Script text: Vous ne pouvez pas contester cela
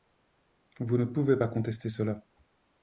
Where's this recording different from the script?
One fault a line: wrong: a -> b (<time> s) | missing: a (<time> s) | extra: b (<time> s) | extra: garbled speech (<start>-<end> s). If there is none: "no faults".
no faults